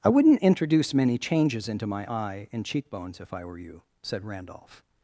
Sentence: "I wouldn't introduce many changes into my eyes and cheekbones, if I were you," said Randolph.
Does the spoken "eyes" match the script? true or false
false